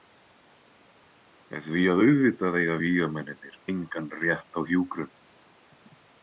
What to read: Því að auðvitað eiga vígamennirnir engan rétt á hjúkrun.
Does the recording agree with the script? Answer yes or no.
yes